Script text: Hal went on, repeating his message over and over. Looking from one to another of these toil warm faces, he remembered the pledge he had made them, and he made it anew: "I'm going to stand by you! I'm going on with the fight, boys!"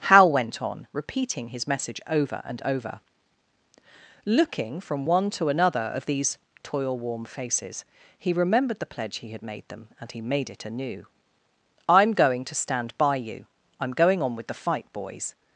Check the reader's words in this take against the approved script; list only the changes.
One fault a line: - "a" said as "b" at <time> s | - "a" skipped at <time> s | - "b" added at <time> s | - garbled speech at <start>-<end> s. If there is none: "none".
none